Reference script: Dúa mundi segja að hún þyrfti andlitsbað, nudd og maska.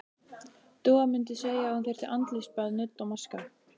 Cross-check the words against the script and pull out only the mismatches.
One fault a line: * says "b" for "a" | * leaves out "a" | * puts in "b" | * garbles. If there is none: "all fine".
all fine